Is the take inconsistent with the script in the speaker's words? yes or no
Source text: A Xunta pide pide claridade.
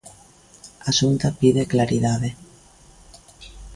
yes